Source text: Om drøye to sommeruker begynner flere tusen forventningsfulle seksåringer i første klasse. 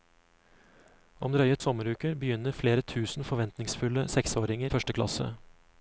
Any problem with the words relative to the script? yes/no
yes